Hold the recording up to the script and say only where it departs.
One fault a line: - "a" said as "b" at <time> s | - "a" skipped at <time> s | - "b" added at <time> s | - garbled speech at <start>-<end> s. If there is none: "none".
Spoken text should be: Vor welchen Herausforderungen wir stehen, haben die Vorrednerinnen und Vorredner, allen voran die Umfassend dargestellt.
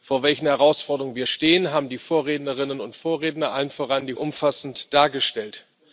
none